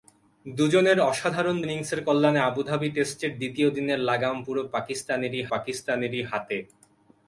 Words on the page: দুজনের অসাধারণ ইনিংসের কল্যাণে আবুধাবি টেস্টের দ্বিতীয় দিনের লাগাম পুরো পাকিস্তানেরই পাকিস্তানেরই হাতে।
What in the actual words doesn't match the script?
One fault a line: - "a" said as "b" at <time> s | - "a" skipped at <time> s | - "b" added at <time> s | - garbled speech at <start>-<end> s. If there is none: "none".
none